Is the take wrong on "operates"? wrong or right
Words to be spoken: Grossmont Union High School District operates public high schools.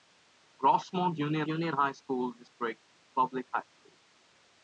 wrong